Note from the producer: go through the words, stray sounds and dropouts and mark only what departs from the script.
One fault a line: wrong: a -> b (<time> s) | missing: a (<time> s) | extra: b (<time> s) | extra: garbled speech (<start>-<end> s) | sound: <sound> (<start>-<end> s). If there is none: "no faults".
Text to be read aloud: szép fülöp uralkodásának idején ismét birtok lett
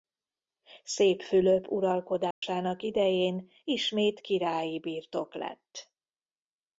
sound: dropout (2.3-2.4 s)
extra: királyi (4.2 s)